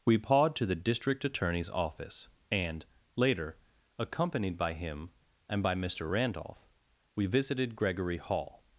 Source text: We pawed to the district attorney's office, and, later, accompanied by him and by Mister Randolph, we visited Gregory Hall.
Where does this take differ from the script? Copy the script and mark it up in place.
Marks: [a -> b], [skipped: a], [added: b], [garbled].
We pawed to the district attorney's office, and, later, accompanied by him and by Mister Randolph, we visited Gregory Hall.